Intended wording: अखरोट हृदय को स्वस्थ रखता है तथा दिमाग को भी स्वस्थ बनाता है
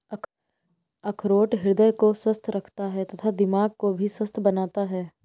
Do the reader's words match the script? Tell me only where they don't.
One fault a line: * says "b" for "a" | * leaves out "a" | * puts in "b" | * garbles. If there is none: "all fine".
all fine